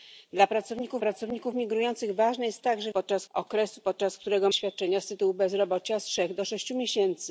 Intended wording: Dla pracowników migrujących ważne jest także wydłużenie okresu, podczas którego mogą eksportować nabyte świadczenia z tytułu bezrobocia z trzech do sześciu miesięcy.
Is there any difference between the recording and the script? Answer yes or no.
yes